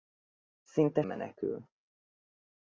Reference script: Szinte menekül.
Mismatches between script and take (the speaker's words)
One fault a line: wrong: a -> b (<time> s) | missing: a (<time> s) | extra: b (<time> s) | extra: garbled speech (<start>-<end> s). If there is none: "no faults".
no faults